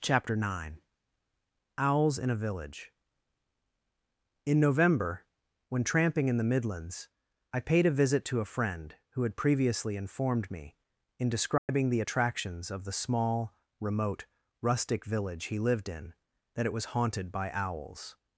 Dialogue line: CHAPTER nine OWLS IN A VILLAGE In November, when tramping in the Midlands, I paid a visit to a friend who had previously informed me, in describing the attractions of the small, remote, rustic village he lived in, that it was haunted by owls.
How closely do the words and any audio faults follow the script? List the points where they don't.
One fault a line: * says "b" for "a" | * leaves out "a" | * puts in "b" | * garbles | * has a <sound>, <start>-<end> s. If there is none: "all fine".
* has a dropout, 11.6-11.7 s